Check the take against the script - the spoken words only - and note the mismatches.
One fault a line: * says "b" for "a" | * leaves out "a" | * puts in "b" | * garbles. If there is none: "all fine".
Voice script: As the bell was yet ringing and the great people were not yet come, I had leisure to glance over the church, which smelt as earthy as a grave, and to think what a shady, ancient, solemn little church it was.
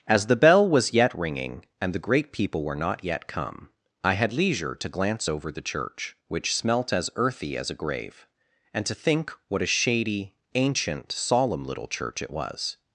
all fine